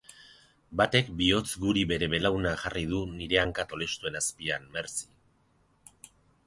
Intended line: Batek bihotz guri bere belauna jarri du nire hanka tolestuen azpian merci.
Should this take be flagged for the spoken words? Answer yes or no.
no